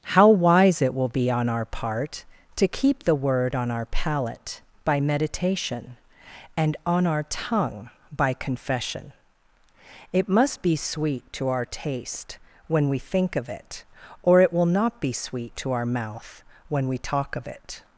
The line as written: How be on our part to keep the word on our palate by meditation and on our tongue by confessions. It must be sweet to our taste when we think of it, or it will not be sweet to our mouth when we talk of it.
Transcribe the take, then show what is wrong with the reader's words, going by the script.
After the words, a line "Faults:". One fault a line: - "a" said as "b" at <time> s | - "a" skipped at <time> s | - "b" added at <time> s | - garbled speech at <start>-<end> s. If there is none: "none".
How wise it will be on our part to keep the word on our palate by meditation and on our tongue by confession. It must be sweet to our taste when we think of it, or it will not be sweet to our mouth when we talk of it.
Faults:
- "wise it will" added at 0.3 s
- "confessions" said as "confession" at 8.3 s